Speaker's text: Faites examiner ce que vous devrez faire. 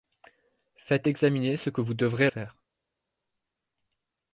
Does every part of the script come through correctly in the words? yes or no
yes